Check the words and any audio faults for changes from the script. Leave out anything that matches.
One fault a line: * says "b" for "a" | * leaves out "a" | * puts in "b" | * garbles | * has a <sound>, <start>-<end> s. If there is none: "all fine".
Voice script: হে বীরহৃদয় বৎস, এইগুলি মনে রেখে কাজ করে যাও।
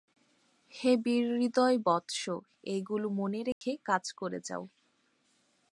* has a dropout, 3.5-3.6 s